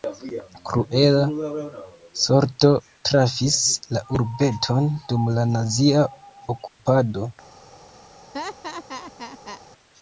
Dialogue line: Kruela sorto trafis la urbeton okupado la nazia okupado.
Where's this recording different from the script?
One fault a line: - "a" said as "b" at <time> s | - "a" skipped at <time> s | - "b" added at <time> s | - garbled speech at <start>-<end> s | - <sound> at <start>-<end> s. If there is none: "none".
- "okupado" said as "dum" at 5.1 s
- dropout at 6.7-6.8 s
- laugh at 8.3-9.6 s